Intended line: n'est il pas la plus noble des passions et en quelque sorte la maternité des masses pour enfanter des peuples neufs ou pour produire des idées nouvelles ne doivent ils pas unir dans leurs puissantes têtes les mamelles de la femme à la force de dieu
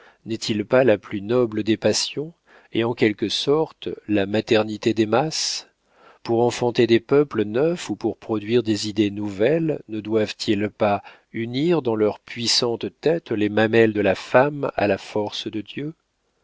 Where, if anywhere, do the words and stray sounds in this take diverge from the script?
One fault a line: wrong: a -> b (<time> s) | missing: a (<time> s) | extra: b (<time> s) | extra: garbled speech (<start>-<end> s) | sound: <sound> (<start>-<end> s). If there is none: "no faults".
no faults